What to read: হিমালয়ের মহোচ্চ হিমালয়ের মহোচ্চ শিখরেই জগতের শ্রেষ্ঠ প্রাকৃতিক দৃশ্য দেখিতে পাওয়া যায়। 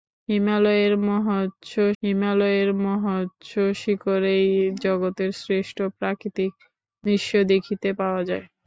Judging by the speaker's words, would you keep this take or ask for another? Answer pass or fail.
pass